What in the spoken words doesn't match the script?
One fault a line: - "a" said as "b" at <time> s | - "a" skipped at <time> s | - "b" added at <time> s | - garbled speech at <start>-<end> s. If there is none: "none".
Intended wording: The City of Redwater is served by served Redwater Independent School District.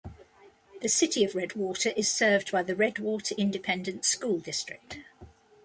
- "served" said as "the" at 2.6 s